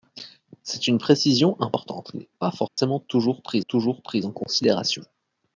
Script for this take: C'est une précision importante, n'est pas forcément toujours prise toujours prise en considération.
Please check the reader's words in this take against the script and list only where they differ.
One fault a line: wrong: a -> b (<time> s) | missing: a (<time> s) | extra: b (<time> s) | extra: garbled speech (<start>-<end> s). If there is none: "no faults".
no faults